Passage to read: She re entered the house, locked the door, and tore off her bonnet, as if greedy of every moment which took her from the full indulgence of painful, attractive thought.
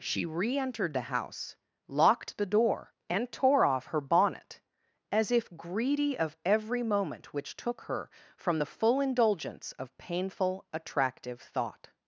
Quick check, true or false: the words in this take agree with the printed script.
true